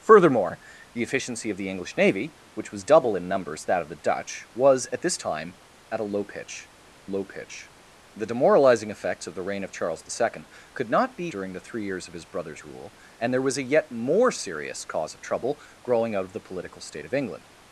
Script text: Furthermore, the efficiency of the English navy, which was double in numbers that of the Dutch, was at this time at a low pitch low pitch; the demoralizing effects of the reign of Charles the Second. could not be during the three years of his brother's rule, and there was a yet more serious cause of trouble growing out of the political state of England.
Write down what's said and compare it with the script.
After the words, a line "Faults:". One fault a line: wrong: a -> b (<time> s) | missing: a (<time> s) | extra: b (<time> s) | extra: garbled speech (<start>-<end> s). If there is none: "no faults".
Furthermore, the efficiency of the English navy, which was double in numbers that of the Dutch, was at this time at a low pitch low pitch; the demoralizing effects of the reign of Charles the Second. could not be during the three years of his brother's rule, and there was a yet more serious cause of trouble growing out of the political state of England.
Faults:
no faults